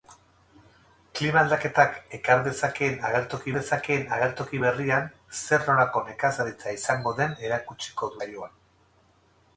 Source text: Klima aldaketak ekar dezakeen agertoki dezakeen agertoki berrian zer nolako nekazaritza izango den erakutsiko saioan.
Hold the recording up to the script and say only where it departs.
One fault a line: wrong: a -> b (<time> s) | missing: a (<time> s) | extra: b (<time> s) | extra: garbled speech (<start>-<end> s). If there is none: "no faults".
no faults